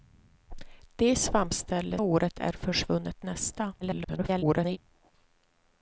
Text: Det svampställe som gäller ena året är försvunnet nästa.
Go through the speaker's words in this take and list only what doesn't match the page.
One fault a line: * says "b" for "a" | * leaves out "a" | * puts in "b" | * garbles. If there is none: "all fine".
* leaves out "som gäller ena"
* garbles